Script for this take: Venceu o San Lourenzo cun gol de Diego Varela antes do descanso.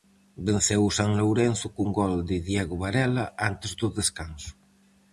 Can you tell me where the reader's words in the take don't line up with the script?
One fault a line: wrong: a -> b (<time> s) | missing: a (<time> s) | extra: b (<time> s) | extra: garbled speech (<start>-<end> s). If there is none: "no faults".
no faults